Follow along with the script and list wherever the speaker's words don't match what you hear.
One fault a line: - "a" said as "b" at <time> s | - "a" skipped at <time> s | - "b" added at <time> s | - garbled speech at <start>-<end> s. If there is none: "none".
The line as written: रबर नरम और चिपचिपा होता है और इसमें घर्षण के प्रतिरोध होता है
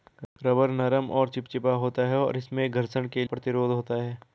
none